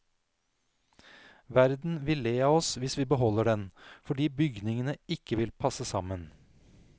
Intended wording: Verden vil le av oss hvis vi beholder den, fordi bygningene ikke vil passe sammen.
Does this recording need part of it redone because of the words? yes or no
no